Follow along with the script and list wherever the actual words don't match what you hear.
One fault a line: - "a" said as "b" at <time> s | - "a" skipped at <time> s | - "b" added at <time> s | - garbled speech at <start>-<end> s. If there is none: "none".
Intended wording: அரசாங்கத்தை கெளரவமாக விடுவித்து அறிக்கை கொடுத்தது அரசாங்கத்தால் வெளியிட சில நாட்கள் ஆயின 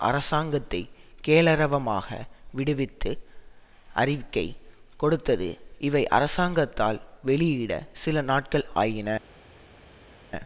- "இவை" added at 5.8 s